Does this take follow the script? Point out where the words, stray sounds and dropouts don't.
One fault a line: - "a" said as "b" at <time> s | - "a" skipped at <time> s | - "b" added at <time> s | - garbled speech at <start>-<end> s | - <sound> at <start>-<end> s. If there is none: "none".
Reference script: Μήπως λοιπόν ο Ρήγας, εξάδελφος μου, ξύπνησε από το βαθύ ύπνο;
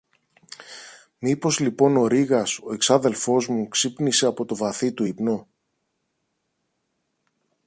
- "ο" added at 2.6 s
- "του" added at 4.9 s